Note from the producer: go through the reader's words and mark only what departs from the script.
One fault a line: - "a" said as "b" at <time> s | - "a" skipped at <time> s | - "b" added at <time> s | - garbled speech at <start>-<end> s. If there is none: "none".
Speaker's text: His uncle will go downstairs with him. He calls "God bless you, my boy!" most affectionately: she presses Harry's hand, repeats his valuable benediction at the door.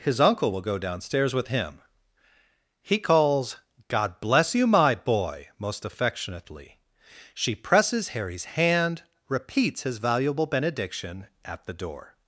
none